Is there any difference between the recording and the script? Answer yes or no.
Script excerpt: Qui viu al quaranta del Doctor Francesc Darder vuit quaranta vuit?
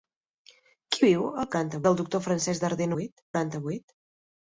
no